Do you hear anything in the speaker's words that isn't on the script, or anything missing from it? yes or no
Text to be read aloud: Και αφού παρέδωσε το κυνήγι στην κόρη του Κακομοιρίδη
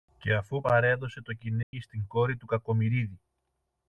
no